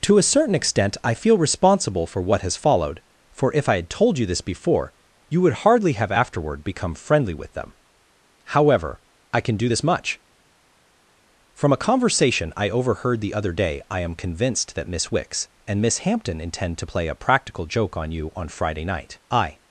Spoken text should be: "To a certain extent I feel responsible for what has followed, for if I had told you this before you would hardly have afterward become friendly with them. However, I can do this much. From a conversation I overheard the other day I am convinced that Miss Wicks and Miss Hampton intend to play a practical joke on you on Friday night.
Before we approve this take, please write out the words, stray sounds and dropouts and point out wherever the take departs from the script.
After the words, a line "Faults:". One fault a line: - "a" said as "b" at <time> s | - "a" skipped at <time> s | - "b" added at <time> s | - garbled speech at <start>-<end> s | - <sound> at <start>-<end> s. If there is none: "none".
"To a certain extent I feel responsible for what has followed, for if I had told you this before you would hardly have afterward become friendly with them. However, I can do this much. From a conversation I overheard the other day I am convinced that Miss Wicks and Miss Hampton intend to play a practical joke on you on Friday night. I
Faults:
- "I" added at 19.3 s